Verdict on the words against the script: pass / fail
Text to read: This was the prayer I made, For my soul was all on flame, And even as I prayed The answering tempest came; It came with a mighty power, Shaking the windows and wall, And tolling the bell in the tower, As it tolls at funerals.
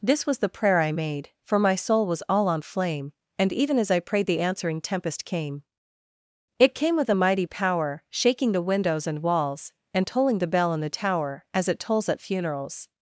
fail